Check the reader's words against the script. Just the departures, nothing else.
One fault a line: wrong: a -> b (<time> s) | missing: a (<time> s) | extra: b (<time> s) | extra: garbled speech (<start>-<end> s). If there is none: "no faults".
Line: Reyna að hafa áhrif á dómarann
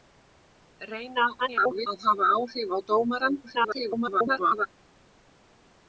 extra: garbled speech (1.4-1.9 s)
extra: garbled speech (3.4-4.7 s)